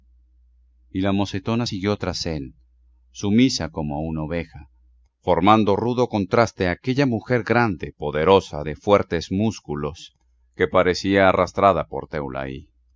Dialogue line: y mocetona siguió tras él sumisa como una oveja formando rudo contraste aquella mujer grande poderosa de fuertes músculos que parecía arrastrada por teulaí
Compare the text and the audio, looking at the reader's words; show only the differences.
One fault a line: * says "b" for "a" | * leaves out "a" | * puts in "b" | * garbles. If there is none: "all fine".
* puts in "la"